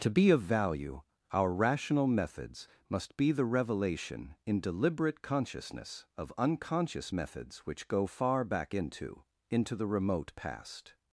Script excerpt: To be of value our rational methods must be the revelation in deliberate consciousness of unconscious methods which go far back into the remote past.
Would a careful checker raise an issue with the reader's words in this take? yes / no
yes